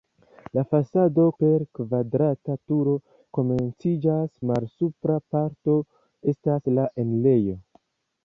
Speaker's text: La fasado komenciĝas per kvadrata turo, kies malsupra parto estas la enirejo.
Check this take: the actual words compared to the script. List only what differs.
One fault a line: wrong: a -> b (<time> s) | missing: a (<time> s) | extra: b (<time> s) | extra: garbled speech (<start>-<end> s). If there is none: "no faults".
missing: komenciĝas (1.2 s)
wrong: kies -> komenciĝas (3.4 s)